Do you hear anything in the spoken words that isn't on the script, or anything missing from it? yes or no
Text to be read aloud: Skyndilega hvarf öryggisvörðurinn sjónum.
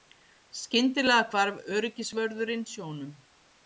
no